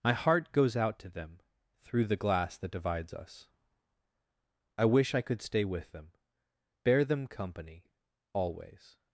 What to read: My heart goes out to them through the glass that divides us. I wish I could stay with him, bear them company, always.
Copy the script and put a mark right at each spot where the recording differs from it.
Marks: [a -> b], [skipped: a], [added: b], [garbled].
My heart goes out to them through the glass that divides us. I wish I could stay with [him, -> them] bear them company, always.